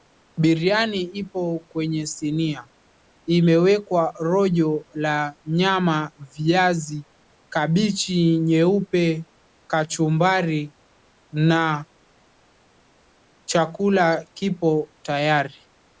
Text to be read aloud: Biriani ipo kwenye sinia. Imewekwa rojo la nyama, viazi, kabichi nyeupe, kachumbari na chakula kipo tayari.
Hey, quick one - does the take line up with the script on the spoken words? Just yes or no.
yes